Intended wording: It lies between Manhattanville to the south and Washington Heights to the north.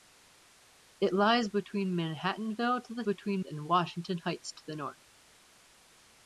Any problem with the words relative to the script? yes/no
yes